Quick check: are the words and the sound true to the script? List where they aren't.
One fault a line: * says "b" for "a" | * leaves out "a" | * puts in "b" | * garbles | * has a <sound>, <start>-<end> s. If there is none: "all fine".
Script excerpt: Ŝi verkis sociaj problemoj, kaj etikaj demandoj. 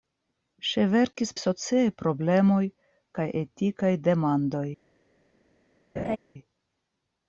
* has a laugh, 6.0-6.2 s